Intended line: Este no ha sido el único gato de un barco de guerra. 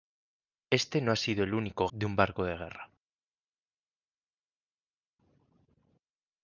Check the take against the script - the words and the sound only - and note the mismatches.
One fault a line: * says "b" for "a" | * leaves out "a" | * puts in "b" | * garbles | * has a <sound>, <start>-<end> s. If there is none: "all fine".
* leaves out "gato"